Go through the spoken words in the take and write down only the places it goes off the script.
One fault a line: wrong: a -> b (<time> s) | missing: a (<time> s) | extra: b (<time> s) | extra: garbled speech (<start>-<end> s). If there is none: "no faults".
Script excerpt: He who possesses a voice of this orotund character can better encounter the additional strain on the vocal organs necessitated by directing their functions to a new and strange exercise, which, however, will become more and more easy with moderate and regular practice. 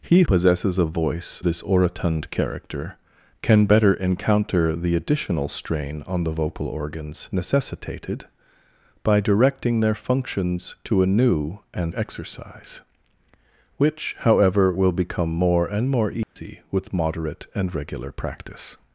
missing: who (0.2 s)
missing: of (1.4 s)
missing: strange (11.9 s)